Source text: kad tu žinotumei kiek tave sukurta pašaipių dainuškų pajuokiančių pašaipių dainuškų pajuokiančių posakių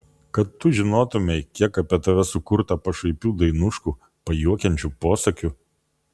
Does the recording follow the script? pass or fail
fail